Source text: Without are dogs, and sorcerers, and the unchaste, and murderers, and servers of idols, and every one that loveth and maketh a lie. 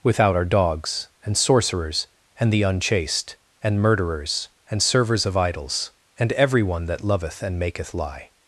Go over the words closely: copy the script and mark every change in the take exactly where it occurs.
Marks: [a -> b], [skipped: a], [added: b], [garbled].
Without are dogs, and sorcerers, and the unchaste, and murderers, and servers of idols, and every one that loveth and maketh [skipped: a] lie.